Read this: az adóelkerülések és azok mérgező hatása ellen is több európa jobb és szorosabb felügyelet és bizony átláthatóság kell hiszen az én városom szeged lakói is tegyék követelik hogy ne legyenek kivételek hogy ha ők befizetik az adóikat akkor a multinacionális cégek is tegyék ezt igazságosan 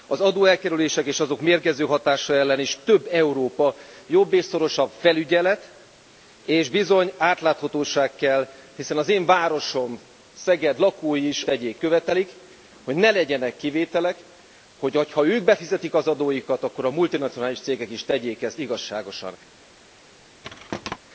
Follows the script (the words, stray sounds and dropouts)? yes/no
no